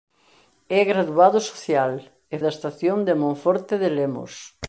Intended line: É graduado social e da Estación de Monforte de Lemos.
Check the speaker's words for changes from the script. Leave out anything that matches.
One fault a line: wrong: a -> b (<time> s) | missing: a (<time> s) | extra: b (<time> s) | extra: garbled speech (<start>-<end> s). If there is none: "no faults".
no faults